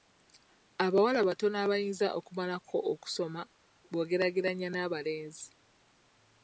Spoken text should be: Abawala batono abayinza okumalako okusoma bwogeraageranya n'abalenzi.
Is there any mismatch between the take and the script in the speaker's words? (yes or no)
no